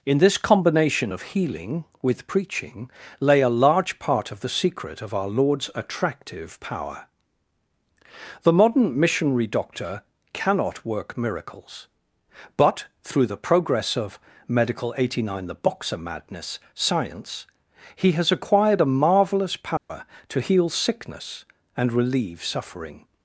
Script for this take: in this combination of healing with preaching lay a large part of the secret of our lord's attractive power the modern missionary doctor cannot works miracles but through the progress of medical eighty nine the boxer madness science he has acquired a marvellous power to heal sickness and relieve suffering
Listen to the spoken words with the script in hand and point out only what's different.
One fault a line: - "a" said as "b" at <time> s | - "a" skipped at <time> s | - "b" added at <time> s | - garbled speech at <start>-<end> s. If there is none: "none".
- "works" said as "work" at 10.8 s